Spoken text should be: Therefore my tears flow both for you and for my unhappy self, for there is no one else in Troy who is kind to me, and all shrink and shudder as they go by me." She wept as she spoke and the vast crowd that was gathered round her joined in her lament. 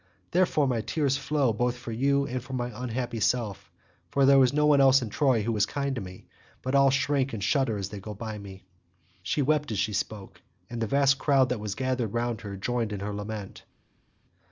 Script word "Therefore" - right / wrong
right